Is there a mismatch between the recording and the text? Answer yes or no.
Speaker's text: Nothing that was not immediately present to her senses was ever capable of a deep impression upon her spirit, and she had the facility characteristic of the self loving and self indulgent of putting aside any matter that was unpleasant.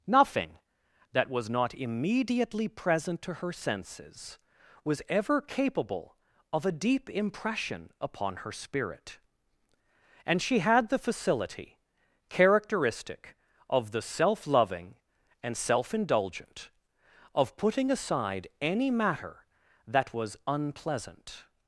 no